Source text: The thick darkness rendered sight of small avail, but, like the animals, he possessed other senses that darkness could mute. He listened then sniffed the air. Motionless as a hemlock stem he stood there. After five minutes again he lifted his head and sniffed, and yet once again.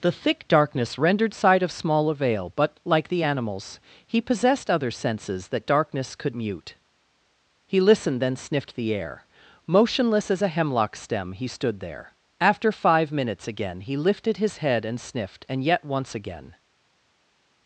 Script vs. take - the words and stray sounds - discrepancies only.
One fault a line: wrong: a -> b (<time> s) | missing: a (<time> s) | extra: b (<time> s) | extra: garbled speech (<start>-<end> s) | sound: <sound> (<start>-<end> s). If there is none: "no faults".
no faults